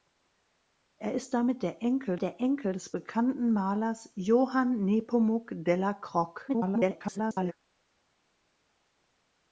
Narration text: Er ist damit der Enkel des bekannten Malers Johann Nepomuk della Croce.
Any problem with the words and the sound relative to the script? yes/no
yes